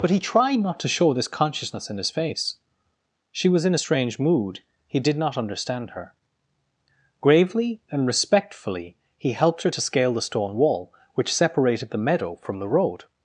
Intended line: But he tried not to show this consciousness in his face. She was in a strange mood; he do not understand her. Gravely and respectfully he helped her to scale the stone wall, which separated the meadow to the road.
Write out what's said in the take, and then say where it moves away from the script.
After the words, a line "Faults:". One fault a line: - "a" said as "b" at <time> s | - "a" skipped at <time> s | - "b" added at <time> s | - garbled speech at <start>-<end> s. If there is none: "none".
But he tried not to show this consciousness in his face. She was in a strange mood; he did not understand her. Gravely and respectfully he helped her to scale the stone wall, which separated the meadow from the road.
Faults:
- "do" said as "did" at 5.0 s
- "to" said as "from" at 12.4 s